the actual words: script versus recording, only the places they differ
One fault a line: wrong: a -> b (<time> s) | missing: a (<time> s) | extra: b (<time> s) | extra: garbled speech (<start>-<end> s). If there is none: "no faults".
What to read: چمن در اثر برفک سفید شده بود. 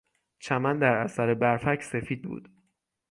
missing: شده (2.3 s)